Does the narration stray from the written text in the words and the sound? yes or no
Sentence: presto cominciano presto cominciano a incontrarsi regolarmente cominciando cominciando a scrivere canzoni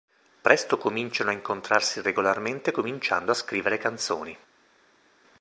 yes